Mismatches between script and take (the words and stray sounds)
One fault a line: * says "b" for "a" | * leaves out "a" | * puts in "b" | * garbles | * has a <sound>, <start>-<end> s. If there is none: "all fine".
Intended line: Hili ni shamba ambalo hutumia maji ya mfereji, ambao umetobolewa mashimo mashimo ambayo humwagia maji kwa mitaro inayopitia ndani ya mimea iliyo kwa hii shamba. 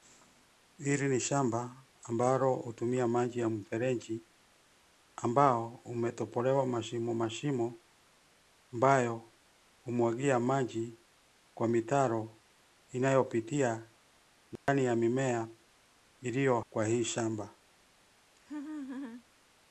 * has a dropout, 14.6-14.7 s
* has a laugh, 18.4-19.3 s